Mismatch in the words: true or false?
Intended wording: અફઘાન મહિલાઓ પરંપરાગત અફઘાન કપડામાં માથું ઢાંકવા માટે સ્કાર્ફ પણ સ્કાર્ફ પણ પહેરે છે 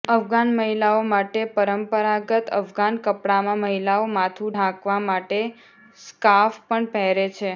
true